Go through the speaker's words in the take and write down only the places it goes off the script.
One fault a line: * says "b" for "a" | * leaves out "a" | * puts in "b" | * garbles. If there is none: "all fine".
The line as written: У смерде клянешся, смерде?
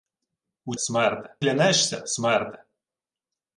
all fine